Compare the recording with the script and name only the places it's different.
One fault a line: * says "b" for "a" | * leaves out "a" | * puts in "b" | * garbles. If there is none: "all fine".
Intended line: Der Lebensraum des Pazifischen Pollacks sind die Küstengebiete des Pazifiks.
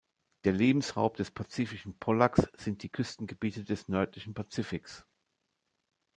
* puts in "nördlichen"